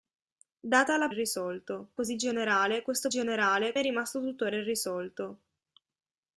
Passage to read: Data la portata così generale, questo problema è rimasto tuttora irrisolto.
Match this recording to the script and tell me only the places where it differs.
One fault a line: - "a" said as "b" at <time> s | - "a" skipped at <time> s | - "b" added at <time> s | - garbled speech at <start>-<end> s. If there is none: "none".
- "portata" said as "irrisolto" at 1.1 s
- "problema" said as "generale" at 3.1 s